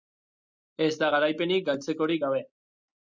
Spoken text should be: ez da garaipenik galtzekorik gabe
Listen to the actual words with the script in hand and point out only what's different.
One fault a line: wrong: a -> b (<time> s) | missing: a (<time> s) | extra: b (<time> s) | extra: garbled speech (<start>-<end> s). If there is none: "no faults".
no faults